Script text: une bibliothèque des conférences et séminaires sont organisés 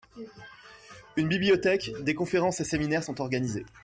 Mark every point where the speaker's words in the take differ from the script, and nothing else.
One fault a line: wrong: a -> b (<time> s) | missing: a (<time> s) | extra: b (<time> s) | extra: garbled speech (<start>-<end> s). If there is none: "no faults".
no faults